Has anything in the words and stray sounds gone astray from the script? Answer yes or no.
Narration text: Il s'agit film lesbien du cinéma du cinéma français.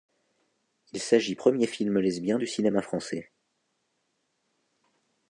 yes